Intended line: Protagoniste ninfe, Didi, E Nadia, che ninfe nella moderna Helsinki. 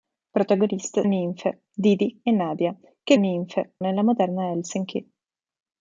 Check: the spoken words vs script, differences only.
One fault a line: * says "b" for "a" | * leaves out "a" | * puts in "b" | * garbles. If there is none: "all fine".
all fine